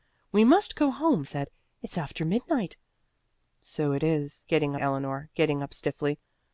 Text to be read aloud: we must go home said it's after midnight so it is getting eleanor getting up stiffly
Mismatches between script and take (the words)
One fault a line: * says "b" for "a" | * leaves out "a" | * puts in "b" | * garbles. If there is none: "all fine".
all fine